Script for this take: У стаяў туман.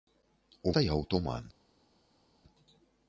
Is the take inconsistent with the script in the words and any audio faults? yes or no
no